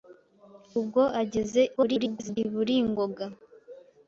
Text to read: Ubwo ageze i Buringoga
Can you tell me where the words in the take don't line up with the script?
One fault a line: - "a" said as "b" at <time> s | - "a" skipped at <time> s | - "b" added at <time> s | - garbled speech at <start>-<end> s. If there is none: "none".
- garbled speech at 1.8-2.4 s